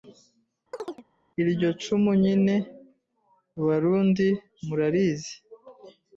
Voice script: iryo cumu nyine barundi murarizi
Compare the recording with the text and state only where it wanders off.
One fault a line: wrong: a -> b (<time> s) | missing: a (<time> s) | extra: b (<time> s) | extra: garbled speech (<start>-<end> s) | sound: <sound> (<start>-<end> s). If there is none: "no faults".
sound: chirp (0.7-1.0 s)